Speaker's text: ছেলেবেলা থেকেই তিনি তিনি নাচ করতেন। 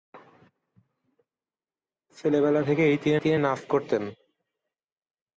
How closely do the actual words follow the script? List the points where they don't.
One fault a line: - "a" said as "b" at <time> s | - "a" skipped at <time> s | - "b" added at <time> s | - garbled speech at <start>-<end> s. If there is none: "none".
none